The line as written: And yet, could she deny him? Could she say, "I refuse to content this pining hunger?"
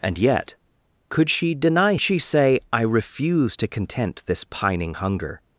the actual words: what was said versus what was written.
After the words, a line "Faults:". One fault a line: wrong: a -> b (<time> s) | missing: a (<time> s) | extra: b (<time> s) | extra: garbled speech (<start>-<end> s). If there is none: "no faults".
And yet, could she deny she say, "I refuse to content this pining hunger?"
Faults:
missing: him Could (1.9 s)